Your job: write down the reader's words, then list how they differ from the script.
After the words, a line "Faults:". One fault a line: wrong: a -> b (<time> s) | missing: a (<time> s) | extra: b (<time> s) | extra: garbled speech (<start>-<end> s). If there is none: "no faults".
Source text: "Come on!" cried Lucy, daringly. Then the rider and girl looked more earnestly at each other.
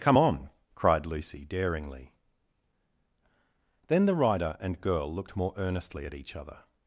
"Come on!" cried Lucy, daringly. Then the rider and girl looked more earnestly at each other.
Faults:
no faults